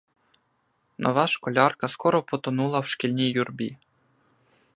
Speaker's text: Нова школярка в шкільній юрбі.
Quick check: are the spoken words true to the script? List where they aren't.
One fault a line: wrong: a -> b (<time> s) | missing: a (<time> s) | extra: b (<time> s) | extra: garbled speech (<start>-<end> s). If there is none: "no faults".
extra: скоро потонула (1.9 s)